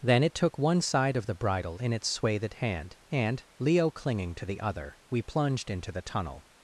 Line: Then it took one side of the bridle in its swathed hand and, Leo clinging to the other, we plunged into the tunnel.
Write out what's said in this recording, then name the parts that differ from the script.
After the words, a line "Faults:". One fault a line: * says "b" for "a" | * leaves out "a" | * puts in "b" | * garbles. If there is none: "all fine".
Then it took one side of the bridle in its swathed hand and, Leo clinging to the other, we plunged into the tunnel.
Faults:
all fine